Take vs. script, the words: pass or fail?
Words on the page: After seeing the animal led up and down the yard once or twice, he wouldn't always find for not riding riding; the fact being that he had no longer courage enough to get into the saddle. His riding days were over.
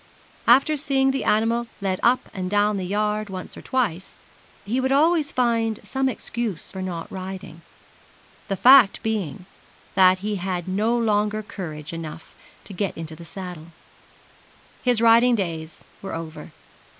fail